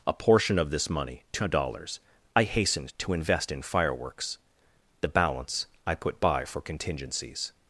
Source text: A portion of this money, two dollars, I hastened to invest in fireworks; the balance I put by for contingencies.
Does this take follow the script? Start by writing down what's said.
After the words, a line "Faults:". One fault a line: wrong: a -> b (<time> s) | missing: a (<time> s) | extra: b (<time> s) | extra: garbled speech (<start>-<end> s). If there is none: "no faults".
A portion of this money, two dollars, I hastened to invest in fireworks; the balance I put by for contingencies.
Faults:
no faults